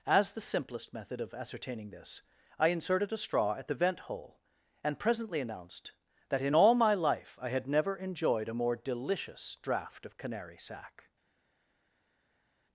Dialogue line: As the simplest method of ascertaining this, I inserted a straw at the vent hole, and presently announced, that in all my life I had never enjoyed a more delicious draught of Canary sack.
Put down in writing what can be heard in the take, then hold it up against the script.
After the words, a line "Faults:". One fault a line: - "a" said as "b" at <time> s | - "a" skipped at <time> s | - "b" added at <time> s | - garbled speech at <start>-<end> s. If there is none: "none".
As the simplest method of ascertaining this, I inserted a straw at the vent hole, and presently announced, that in all my life I had never enjoyed a more delicious draught of Canary sack.
Faults:
none